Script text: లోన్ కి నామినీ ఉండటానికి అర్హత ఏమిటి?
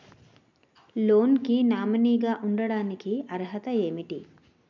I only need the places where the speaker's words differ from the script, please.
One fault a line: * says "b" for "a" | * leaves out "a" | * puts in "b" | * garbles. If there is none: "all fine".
* puts in "గా"